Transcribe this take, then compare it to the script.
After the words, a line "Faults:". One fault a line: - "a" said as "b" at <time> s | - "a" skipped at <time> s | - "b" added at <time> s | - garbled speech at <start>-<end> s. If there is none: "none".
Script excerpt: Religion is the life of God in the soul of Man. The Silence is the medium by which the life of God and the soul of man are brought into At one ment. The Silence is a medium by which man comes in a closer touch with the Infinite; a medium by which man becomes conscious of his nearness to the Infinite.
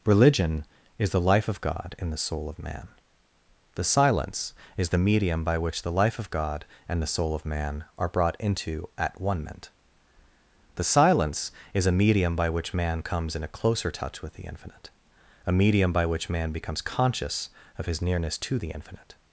Religion is the life of God in the soul of Man. The Silence is the medium by which the life of God and the soul of man are brought into At one ment. The Silence is a medium by which man comes in a closer touch with the Infinite; a medium by which man becomes conscious of his nearness to the Infinite.
Faults:
none